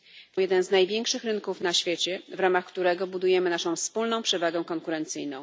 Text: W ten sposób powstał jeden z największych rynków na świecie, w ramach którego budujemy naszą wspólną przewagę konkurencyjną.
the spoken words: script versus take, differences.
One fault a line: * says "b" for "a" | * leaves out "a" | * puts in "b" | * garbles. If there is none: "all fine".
* leaves out "ten sposób powstał"